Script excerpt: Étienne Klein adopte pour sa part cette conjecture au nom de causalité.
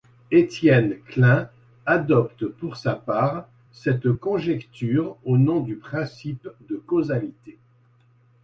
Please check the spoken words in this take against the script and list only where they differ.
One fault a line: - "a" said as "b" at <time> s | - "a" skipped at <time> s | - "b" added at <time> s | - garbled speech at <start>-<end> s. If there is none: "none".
- "du principe" added at 5.6 s